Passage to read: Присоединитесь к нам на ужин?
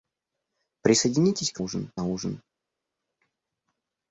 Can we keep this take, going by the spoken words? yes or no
no